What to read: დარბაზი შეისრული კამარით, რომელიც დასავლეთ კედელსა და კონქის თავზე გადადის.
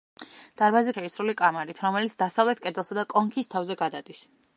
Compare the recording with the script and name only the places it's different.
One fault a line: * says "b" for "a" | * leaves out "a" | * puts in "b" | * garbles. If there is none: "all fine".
all fine